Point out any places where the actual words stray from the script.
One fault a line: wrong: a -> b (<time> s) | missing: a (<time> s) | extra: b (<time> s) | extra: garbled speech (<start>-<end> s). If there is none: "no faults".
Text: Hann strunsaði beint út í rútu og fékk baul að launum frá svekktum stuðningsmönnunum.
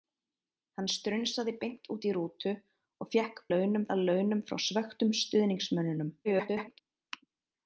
wrong: baul -> launum (3.5 s)
extra: garbled speech (6.2-6.8 s)